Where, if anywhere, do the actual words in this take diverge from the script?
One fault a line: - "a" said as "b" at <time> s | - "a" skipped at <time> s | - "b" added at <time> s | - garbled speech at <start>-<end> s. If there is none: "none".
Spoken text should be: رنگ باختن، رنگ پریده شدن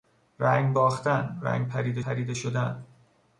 - "پریده" added at 2.0 s